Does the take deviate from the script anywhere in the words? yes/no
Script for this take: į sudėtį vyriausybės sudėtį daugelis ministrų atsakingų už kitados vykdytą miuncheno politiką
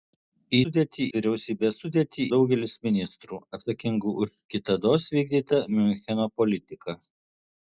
no